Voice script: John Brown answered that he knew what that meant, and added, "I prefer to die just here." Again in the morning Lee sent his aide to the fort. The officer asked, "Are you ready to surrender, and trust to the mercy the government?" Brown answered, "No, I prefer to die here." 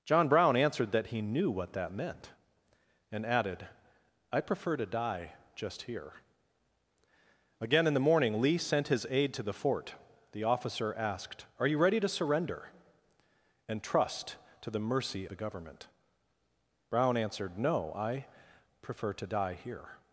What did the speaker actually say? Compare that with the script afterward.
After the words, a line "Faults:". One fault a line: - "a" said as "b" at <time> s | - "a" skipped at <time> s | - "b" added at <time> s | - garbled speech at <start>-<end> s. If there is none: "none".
John Brown answered that he knew what that meant, and added, "I prefer to die just here." Again in the morning Lee sent his aide to the fort. The officer asked, "Are you ready to surrender, and trust to the mercy the government?" Brown answered, "No, I prefer to die here."
Faults:
none